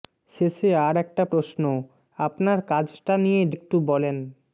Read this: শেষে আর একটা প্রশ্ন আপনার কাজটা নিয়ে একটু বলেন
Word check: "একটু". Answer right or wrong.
right